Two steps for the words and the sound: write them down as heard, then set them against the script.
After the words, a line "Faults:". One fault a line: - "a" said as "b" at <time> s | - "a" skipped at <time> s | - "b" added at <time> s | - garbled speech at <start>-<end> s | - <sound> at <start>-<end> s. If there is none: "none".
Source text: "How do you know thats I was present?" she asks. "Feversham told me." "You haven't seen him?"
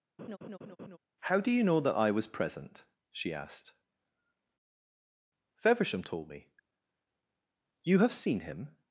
"How do you know that I was present?" she asked. "Feversham told me." "You have seen him?"
Faults:
- laugh at 0.2-1.0 s
- "thats" said as "that" at 1.8 s
- "asks" said as "asked" at 3.3 s
- "haven't" said as "have" at 8.0 s